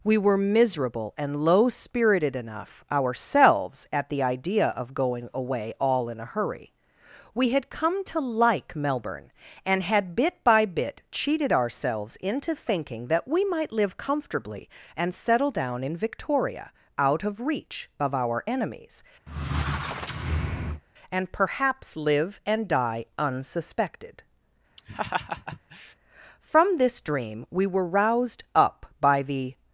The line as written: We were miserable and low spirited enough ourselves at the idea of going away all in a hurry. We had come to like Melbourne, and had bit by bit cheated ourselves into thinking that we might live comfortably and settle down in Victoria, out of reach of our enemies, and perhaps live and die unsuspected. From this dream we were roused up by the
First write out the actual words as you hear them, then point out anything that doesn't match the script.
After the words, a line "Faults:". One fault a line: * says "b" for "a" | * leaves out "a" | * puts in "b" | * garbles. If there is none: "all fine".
We were miserable and low spirited enough ourselves at the idea of going away all in a hurry. We had come to like Melbourne, and had bit by bit cheated ourselves into thinking that we might live comfortably and settle down in Victoria, out of reach of our enemies, and perhaps live and die unsuspected. From this dream we were roused up by the
Faults:
all fine